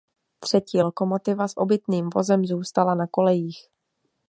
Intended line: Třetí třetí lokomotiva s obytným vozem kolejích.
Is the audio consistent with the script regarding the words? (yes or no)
no